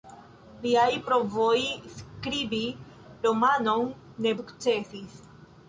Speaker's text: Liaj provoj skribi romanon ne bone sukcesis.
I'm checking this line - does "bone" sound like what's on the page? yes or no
no